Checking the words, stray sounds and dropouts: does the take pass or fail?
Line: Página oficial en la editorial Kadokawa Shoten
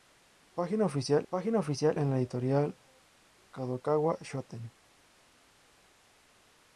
fail